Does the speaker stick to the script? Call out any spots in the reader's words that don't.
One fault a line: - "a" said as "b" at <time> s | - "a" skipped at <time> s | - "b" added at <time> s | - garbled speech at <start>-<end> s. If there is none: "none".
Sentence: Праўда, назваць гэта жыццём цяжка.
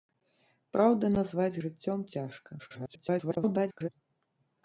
- "гэта" skipped at 1.6 s
- garbled speech at 2.6-3.9 s